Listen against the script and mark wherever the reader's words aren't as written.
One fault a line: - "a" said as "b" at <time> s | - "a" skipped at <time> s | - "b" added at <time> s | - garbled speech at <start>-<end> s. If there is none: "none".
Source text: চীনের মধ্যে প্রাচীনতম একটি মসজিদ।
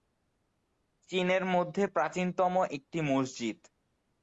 none